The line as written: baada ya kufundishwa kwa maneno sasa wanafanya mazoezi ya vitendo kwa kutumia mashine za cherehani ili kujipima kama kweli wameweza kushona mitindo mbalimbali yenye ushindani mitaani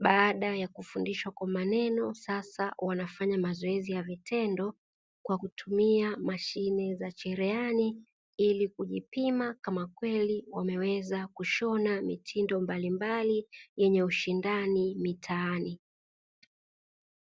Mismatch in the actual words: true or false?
false